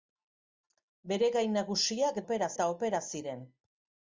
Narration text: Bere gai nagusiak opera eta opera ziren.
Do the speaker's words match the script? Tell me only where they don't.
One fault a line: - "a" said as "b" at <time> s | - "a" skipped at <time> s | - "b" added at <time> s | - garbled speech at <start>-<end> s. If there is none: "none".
none